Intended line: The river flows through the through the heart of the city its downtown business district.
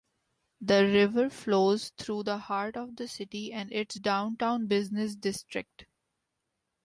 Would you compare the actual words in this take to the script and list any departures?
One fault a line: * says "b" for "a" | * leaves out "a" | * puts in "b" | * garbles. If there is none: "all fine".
* leaves out "through the"
* puts in "and"